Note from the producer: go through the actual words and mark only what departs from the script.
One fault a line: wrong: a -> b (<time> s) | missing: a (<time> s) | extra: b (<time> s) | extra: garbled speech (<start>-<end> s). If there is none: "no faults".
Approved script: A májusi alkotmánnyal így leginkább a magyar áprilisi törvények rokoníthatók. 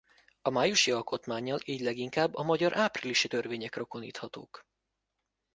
no faults